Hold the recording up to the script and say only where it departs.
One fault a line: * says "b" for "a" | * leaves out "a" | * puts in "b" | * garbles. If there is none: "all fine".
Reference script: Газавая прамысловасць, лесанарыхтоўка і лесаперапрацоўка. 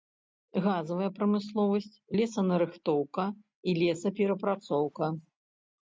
all fine